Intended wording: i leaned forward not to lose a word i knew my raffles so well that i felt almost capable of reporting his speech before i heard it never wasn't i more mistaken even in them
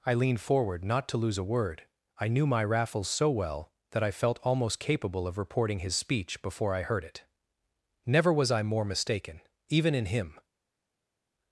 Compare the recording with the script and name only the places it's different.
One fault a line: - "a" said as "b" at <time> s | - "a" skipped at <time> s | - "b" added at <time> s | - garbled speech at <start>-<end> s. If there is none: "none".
- "wasn't" said as "was" at 8.3 s
- "them" said as "him" at 10.1 s